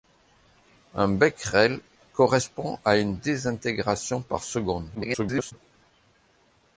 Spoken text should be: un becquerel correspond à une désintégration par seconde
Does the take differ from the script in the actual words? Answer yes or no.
yes